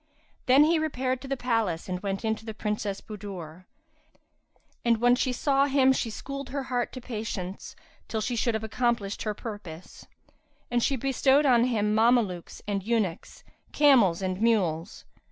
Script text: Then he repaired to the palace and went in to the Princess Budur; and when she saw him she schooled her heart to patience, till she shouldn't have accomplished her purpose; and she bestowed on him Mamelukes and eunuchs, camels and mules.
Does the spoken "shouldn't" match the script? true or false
false